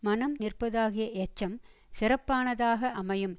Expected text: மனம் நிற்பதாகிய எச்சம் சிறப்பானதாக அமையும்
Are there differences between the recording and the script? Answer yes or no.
no